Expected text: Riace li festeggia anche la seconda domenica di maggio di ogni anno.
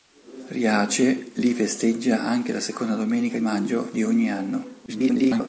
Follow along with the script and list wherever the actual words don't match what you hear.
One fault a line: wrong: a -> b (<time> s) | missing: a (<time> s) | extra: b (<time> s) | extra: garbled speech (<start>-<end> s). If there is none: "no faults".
missing: di (3.4 s)
extra: garbled speech (4.9-5.5 s)